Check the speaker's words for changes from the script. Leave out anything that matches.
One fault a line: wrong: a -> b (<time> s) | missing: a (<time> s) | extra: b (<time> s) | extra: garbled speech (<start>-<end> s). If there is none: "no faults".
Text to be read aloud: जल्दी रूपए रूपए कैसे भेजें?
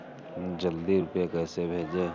missing: रूपए (1.3 s)